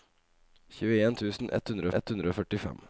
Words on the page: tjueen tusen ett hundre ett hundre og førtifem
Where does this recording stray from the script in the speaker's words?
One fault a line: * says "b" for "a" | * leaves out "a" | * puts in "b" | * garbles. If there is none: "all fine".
all fine